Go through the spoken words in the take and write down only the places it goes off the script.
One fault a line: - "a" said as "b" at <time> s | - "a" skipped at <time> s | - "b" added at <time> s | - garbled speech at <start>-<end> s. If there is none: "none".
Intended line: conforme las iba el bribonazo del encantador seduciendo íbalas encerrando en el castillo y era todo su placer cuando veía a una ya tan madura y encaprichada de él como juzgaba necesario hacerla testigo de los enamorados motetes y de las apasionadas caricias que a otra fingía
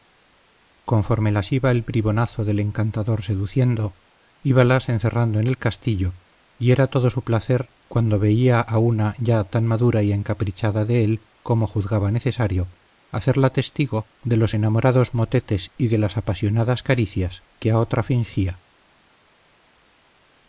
none